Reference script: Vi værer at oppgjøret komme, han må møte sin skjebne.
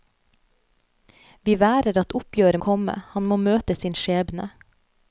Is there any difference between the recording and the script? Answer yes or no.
no